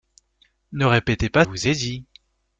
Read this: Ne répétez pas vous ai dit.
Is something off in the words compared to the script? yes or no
no